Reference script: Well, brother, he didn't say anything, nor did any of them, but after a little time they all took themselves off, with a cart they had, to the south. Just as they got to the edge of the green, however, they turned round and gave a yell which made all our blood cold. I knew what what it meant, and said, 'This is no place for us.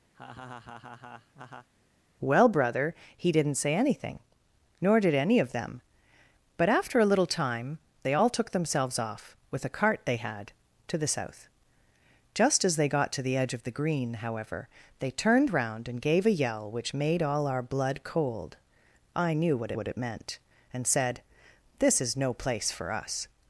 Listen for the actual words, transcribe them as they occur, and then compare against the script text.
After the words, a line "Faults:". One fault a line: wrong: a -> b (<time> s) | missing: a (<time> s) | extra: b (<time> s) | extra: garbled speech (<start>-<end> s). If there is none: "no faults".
Well, brother, he didn't say anything, nor did any of them, but after a little time they all took themselves off, with a cart they had, to the south. Just as they got to the edge of the green, however, they turned round and gave a yell which made all our blood cold. I knew what what it meant, and said, 'This is no place for us.
Faults:
no faults